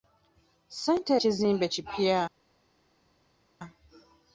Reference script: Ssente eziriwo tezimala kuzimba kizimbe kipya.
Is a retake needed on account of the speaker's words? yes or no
yes